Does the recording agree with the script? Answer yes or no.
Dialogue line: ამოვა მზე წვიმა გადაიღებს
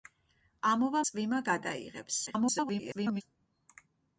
no